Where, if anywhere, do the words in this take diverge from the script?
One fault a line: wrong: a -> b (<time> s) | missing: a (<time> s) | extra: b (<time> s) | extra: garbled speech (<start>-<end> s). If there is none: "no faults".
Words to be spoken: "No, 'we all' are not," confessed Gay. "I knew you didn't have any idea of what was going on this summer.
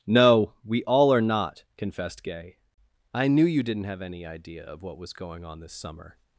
no faults